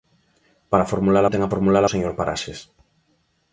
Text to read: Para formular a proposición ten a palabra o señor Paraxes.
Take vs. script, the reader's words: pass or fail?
fail